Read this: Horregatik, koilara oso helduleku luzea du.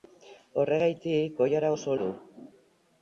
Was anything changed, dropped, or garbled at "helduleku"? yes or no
yes